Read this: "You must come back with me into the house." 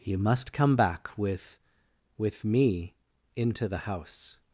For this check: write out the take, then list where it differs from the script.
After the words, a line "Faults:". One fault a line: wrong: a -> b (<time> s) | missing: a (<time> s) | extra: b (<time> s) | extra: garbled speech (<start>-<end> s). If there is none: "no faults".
"You must come back with with me into the house."
Faults:
extra: with (2.2 s)